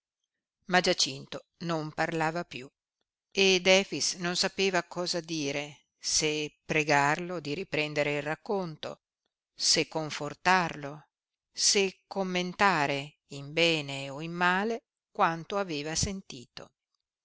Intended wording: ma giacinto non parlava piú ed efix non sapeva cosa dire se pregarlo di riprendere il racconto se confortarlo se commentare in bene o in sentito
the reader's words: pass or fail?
fail